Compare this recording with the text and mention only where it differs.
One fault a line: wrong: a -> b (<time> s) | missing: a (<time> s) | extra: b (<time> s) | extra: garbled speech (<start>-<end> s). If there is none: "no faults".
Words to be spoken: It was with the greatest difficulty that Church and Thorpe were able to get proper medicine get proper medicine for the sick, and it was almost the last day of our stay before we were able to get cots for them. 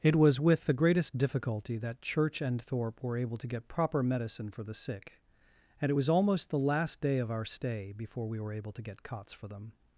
missing: get proper medicine (4.5 s)